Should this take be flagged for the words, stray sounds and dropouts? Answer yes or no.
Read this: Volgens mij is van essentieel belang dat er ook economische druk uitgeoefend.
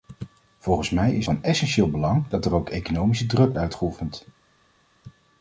no